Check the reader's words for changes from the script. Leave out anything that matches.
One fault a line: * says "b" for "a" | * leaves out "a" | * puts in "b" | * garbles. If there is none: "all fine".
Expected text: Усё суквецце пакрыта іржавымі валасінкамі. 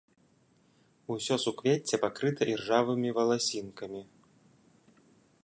all fine